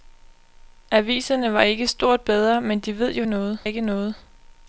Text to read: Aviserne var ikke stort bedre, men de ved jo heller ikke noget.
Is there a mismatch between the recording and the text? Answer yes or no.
yes